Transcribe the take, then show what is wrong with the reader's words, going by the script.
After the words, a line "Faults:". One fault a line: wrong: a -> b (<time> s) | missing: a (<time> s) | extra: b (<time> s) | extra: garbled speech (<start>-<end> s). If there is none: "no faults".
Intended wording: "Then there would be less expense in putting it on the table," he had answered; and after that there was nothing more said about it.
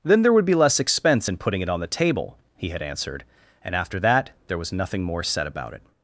"Then there would be less expense in putting it on the table," he had answered; and after that there was nothing more said about it.
Faults:
no faults